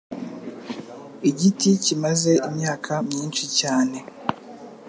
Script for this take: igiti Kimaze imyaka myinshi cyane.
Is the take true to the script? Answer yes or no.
yes